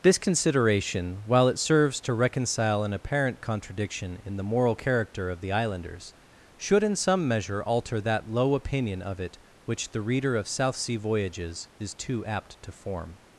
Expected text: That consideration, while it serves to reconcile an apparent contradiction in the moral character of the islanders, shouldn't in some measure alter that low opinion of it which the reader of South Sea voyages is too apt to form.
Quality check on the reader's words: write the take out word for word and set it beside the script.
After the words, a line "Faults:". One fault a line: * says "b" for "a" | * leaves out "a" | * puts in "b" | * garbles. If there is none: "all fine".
This consideration, while it serves to reconcile an apparent contradiction in the moral character of the islanders, should in some measure alter that low opinion of it which the reader of South Sea voyages is too apt to form.
Faults:
* says "This" for "That"
* says "should" for "shouldn't"